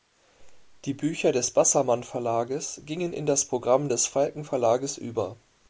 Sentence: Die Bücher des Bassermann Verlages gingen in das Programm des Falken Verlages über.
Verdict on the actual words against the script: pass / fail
pass